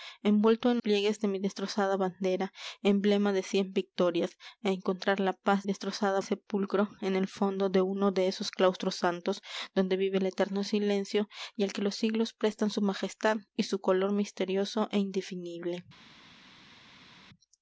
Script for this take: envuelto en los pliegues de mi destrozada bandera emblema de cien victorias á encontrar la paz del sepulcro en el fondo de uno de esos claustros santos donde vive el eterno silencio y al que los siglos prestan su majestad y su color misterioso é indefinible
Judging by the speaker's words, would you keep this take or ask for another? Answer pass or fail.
fail